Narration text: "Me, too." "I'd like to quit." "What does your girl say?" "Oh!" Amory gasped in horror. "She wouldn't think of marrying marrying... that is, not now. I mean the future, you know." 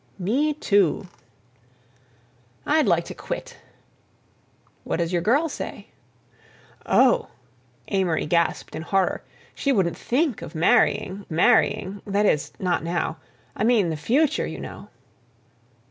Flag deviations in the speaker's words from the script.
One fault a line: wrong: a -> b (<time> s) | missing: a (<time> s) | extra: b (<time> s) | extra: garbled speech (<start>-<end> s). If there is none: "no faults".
no faults